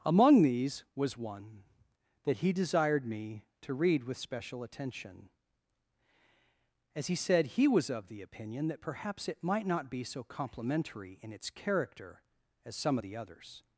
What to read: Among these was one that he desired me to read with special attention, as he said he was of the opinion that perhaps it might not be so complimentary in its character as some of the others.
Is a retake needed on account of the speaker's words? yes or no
no